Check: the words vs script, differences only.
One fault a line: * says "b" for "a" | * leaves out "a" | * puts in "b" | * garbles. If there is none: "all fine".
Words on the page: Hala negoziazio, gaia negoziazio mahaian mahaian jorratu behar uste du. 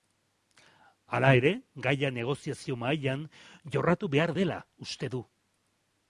* says "ere" for "negoziazio"
* leaves out "mahaian"
* puts in "dela"